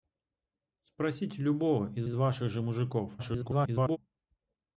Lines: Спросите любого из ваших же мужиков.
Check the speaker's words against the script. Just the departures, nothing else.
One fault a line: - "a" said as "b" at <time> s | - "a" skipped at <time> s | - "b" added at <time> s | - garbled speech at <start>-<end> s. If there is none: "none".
- "из" added at 2.0 s
- garbled speech at 3.2-4.0 s